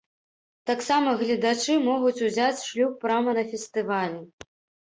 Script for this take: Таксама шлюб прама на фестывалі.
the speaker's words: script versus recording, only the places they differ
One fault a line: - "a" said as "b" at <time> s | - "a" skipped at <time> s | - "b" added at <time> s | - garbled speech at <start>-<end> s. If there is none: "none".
- "гледачы могуць узяць" added at 1.2 s